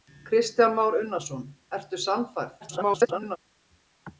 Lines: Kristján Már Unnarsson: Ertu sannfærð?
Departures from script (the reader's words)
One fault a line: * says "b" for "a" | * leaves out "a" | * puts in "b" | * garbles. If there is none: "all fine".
* garbles